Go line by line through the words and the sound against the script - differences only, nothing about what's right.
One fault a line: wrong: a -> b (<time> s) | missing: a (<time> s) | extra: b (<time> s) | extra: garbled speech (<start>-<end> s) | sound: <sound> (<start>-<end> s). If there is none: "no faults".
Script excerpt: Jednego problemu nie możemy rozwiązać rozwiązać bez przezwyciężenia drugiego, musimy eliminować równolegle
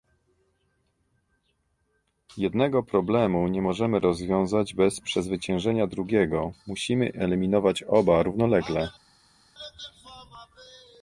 missing: rozwiązać (4.7 s)
extra: oba (7.8 s)